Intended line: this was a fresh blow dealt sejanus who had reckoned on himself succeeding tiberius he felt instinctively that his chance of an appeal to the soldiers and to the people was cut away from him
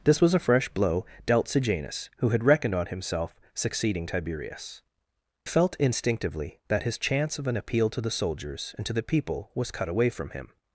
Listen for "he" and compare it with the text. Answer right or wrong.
wrong